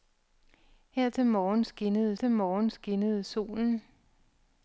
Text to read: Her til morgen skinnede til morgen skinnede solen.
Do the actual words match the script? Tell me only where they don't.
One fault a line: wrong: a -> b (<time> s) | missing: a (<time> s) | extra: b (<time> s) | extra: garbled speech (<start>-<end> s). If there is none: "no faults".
no faults